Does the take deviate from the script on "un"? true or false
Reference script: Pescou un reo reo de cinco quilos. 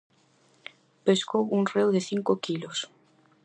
false